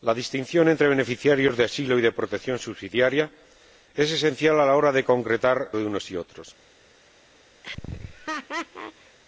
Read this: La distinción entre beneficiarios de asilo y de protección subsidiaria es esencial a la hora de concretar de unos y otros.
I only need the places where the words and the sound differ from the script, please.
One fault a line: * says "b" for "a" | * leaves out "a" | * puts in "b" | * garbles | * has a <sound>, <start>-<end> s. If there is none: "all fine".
* has a laugh, 7.6-9.2 s